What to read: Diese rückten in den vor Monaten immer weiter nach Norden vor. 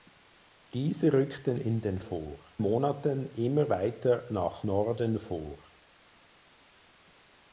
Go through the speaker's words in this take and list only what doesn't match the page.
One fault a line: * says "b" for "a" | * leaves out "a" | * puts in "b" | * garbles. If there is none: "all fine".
all fine